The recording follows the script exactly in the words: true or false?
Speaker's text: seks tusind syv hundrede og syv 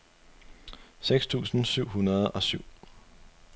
true